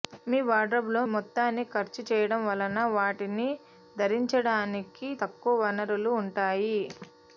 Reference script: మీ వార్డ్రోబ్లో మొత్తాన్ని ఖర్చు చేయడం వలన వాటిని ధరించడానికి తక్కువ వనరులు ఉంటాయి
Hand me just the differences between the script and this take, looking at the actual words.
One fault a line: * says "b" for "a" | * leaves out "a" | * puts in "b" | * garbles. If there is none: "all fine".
all fine